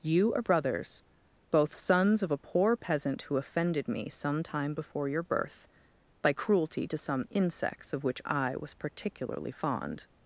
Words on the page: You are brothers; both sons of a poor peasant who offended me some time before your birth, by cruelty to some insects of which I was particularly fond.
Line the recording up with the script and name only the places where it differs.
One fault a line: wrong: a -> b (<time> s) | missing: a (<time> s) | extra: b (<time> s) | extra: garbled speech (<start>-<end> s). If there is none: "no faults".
no faults